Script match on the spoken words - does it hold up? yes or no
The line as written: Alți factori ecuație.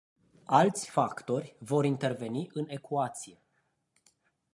no